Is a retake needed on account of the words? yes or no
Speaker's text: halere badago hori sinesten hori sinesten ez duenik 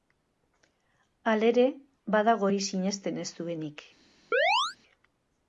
yes